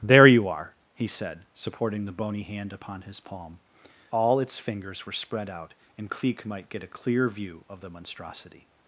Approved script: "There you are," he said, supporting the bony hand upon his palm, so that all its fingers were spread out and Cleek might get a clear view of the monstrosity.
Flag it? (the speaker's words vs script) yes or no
yes